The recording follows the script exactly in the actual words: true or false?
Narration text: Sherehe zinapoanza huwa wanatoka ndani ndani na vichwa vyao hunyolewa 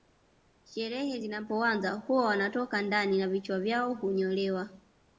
false